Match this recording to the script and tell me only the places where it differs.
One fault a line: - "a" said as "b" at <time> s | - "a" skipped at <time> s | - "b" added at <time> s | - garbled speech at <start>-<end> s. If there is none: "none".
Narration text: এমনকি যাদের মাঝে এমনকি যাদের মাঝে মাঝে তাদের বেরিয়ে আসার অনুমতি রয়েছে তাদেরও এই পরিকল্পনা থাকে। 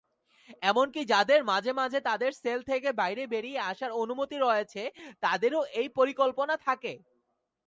- "এমনকি যাদের মাঝে মাঝে তাদের" said as "মাঝে তাদের সেল থেকে বাইরে" at 1.8 s